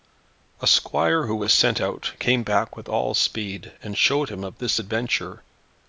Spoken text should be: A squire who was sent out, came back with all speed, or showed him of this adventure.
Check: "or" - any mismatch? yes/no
yes